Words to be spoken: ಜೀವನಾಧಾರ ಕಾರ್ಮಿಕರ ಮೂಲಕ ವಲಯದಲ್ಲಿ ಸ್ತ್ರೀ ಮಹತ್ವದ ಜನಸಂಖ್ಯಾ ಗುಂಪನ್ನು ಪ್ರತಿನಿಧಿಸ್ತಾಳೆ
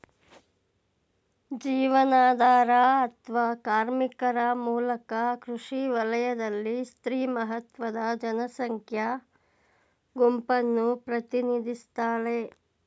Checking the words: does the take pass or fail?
fail